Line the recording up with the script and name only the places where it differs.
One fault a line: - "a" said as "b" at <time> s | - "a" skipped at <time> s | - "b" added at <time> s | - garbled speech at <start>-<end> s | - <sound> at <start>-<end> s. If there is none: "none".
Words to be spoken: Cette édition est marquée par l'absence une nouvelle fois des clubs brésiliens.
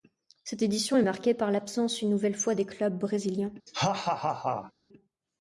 - laugh at 3.7-4.7 s